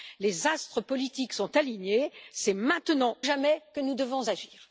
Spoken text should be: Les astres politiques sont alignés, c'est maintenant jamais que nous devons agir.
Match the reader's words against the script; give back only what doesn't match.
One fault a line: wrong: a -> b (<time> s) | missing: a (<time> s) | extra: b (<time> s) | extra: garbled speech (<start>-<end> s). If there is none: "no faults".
no faults